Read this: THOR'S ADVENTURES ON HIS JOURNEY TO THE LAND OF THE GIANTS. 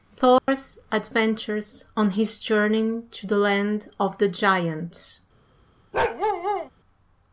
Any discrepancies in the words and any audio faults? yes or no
yes